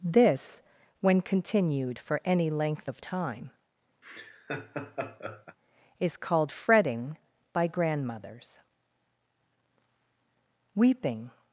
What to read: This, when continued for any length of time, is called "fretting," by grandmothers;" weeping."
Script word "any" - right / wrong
right